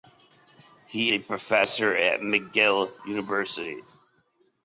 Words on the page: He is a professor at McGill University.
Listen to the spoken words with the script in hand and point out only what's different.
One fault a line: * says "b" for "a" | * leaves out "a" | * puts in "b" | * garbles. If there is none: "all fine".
* leaves out "is"